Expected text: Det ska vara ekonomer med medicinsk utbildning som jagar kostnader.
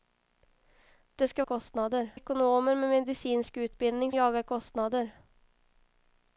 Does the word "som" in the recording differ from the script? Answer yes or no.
yes